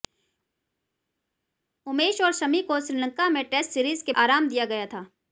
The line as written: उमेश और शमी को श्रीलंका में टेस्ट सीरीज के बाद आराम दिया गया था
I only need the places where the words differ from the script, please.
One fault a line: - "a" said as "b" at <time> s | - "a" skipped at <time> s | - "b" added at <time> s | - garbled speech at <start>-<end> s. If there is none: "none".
- "बाद" skipped at 4.1 s